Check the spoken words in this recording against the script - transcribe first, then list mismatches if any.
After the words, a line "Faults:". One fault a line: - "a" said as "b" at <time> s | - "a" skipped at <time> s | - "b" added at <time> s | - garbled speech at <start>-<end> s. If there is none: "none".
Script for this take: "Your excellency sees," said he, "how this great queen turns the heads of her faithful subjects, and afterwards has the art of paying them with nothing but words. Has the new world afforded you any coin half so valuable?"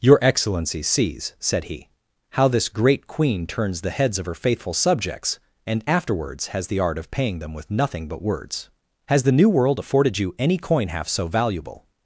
"Your excellency sees," said he, "how this great queen turns the heads of her faithful subjects, and afterwards has the art of paying them with nothing but words. Has the new world afforded you any coin half so valuable?"
Faults:
none